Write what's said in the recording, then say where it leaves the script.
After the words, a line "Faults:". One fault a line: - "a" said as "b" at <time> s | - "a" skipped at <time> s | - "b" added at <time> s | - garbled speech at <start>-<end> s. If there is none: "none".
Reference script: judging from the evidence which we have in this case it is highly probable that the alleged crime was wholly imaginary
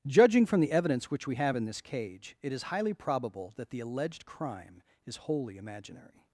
judging from the evidence which we have in this cage it is highly probable that the alleged crime is wholly imaginary
Faults:
- "case" said as "cage" at 1.8 s
- "was" said as "is" at 5.0 s